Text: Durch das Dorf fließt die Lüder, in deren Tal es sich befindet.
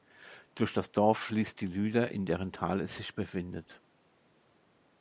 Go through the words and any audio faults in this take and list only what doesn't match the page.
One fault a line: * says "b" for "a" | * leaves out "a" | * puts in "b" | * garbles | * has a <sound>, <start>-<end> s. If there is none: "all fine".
all fine